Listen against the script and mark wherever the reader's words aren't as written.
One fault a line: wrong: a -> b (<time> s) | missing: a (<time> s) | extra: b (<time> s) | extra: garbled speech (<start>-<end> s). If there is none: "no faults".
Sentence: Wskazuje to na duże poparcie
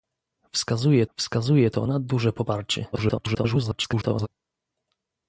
extra: wskazuje (1.2 s)
extra: garbled speech (2.9-4.3 s)